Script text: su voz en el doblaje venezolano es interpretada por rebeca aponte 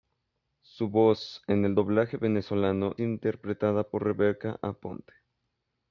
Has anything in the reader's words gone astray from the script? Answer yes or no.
yes